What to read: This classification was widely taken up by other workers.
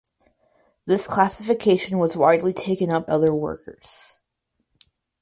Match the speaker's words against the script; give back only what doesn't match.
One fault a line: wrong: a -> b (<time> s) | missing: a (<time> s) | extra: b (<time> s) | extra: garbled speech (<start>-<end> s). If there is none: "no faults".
missing: by (3.1 s)